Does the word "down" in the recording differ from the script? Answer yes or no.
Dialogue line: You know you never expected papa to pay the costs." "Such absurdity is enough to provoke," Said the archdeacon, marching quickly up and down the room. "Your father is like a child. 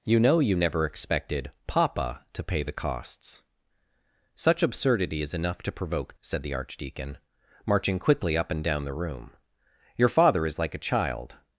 no